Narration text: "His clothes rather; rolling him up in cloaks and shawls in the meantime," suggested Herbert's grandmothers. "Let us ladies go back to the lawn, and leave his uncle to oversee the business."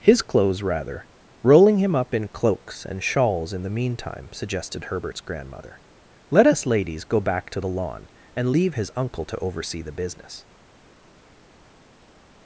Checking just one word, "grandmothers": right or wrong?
wrong